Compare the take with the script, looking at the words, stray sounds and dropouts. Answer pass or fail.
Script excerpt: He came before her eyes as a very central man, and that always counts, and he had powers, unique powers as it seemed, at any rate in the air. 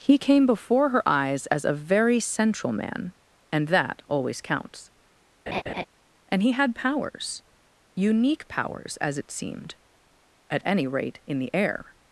fail